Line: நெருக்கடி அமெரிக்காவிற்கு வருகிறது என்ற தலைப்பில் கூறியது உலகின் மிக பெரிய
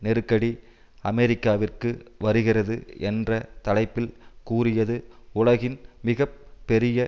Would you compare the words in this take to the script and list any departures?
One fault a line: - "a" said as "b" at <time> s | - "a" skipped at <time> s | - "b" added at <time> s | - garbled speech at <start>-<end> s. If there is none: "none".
none